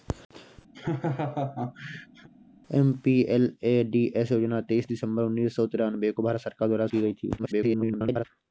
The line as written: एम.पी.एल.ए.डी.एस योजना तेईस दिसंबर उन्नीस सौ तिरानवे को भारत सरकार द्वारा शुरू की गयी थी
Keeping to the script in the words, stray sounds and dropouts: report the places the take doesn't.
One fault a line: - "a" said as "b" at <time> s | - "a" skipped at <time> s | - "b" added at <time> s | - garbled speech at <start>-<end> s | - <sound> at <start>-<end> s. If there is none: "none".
- laugh at 0.7-2.3 s
- "शुरू" skipped at 6.9 s
- garbled speech at 7.4-8.3 s